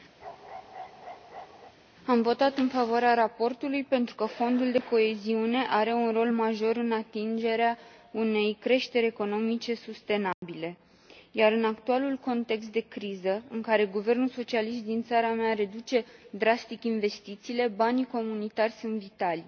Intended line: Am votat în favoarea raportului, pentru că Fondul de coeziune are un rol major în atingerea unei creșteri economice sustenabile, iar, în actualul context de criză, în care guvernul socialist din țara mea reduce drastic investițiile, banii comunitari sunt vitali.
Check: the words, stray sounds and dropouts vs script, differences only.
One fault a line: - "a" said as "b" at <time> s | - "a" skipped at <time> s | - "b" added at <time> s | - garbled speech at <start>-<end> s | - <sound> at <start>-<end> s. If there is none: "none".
- bark at 0.2-1.7 s
- dropout at 10.3-10.4 s